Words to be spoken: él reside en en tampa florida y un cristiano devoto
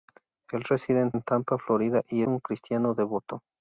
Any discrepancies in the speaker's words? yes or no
no